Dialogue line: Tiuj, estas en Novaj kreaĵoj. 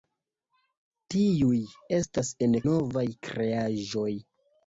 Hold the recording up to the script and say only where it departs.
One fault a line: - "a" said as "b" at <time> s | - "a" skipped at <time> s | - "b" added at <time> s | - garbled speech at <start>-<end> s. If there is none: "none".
none